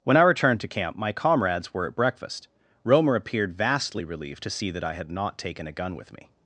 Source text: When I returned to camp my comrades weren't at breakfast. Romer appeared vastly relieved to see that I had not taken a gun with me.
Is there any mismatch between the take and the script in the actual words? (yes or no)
yes